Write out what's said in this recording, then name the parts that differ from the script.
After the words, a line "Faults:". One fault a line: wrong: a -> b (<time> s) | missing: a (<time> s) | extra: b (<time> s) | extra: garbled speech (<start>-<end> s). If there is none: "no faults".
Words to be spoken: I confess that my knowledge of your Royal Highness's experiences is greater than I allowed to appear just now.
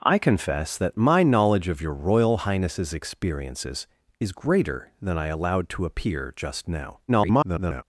I confess that my knowledge of your Royal Highness's experiences is greater than I allowed to appear just now. [garbled]
Faults:
extra: garbled speech (7.1-7.8 s)